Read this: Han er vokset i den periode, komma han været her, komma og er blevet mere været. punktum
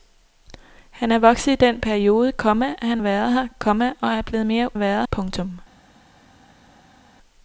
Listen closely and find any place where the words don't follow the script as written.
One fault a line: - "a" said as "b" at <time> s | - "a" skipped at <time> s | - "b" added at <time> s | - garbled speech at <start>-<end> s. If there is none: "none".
none